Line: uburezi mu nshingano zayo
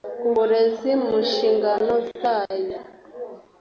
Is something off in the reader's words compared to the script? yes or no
no